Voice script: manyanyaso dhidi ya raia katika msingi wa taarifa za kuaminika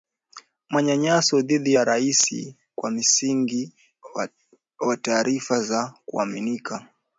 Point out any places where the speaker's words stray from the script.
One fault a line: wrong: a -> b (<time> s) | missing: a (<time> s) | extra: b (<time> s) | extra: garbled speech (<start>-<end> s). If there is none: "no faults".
wrong: katika -> kwa (2.7 s)